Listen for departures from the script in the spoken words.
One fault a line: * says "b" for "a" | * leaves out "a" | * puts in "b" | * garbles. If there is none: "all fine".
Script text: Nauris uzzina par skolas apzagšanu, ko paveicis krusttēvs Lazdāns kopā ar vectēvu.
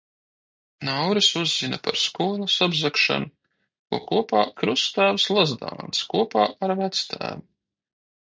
* says "kopā" for "paveicis"